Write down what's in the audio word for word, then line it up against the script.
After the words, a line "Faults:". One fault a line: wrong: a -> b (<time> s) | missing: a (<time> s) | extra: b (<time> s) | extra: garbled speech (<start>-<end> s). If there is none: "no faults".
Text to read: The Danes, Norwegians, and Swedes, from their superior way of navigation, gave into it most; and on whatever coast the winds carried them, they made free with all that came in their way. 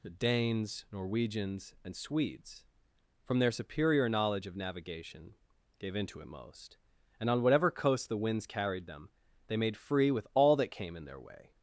The Danes, Norwegians, and Swedes, from their superior knowledge of navigation, gave into it most; and on whatever coast the winds carried them, they made free with all that came in their way.
Faults:
wrong: way -> knowledge (4.1 s)